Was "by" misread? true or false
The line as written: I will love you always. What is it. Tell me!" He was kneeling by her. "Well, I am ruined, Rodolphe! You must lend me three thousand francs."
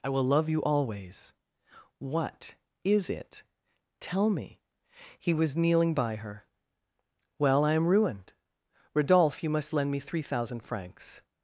false